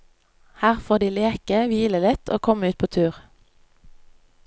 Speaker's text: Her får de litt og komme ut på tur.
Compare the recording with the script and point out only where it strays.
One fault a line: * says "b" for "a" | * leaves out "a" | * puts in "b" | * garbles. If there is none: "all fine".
* puts in "leke hvile"